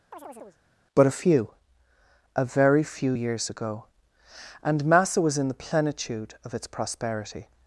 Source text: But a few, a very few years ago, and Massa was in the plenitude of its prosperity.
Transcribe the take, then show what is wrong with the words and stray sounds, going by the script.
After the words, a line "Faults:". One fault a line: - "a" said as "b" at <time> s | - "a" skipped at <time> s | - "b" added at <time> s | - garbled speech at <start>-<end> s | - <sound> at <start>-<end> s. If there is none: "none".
But a few, a very few years ago, and Massa was in the plenitude of its prosperity.
Faults:
- chirp at 0.1-0.6 s